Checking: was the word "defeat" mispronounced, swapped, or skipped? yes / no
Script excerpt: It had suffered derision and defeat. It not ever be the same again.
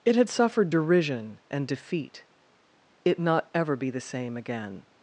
no